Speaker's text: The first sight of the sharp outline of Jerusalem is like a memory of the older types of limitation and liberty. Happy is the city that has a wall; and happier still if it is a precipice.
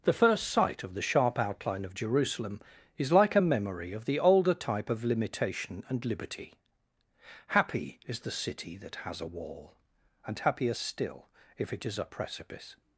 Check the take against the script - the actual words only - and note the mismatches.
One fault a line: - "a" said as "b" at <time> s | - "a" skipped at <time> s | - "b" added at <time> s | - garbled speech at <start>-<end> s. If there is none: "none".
- "types" said as "type" at 4.5 s